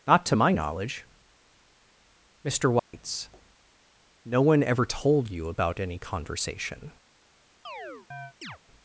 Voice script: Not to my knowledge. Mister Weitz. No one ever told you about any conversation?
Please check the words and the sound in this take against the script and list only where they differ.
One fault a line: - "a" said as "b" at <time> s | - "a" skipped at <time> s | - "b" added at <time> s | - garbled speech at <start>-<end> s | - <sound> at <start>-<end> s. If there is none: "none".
- dropout at 2.8-2.9 s
- chirp at 7.6-8.6 s